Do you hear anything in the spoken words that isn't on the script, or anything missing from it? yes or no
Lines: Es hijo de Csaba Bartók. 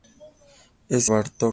yes